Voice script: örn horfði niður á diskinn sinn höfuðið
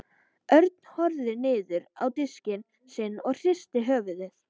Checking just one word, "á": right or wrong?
right